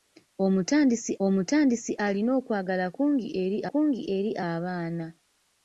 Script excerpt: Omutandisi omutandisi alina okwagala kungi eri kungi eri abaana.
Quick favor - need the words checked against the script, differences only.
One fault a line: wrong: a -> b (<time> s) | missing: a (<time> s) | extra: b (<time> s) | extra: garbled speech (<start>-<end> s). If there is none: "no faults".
no faults